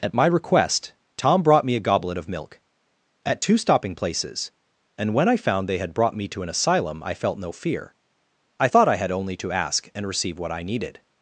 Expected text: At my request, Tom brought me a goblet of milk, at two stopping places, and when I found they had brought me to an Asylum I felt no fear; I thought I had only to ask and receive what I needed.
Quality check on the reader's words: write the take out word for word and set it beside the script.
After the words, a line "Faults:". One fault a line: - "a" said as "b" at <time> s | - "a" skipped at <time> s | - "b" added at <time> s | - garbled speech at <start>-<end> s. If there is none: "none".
At my request, Tom brought me a goblet of milk, at two stopping places, and when I found they had brought me to an Asylum I felt no fear; I thought I had only to ask and receive what I needed.
Faults:
none